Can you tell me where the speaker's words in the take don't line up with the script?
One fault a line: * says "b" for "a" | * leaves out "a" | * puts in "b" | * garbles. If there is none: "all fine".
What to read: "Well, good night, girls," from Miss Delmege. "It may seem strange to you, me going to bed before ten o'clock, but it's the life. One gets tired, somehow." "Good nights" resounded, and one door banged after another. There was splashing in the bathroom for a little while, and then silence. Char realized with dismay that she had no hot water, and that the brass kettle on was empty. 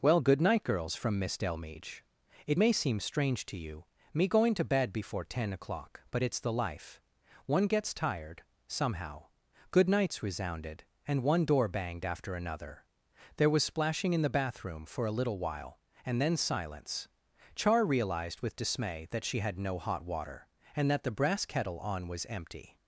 all fine